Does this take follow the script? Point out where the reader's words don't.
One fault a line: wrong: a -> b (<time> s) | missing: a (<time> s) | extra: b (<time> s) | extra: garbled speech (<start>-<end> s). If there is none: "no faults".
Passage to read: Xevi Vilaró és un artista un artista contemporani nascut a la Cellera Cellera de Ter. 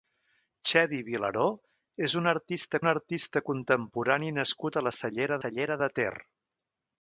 no faults